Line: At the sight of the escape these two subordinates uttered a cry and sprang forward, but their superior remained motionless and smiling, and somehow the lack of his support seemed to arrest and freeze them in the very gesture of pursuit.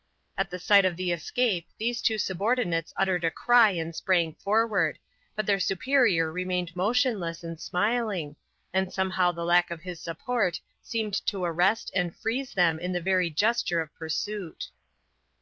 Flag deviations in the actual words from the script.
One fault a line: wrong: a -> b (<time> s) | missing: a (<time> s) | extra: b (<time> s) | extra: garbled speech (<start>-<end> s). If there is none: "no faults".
no faults